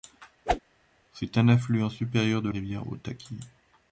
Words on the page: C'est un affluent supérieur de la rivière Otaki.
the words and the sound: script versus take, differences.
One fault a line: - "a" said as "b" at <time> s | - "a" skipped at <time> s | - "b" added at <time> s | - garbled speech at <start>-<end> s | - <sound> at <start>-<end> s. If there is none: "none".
- whoosh at 0.5-0.6 s
- "la" skipped at 2.5 s